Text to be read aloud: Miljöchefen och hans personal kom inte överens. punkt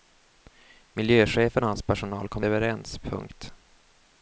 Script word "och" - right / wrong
right